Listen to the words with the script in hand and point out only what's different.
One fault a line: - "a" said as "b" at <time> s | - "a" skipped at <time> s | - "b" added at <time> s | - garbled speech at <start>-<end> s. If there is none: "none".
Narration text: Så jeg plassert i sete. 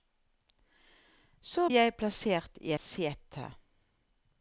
none